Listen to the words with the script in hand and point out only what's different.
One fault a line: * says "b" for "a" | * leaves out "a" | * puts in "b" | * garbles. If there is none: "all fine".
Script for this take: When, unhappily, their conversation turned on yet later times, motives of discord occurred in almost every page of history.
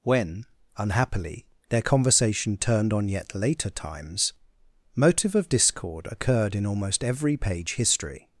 * says "motive" for "motives"
* leaves out "of"